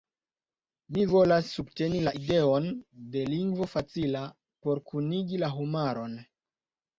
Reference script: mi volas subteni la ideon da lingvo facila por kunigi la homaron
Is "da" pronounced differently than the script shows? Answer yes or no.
yes